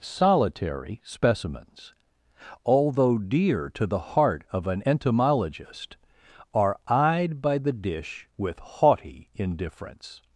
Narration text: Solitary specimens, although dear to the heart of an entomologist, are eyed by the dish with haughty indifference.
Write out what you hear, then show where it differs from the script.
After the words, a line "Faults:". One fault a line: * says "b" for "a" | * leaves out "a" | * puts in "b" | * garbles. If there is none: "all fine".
Solitary specimens, although dear to the heart of an entomologist, are eyed by the dish with haughty indifference.
Faults:
all fine